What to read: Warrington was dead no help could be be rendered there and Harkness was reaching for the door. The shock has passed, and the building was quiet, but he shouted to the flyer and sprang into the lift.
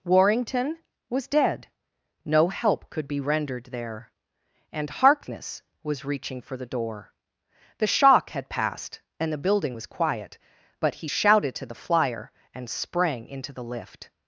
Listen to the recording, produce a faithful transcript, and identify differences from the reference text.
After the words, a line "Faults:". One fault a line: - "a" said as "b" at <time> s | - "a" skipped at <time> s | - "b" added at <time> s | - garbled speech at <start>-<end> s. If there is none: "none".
Warrington was dead no help could be rendered there and Harkness was reaching for the door. The shock had passed, and the building was quiet, but he shouted to the flyer and sprang into the lift.
Faults:
- "be" skipped at 3.2 s
- "has" said as "had" at 8.3 s